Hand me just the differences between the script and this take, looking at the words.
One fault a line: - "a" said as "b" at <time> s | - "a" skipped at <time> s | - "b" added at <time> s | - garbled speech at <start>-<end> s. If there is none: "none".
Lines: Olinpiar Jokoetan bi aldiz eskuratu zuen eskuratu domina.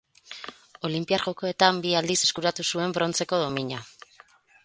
- "eskuratu" said as "brontzeko" at 3.0 s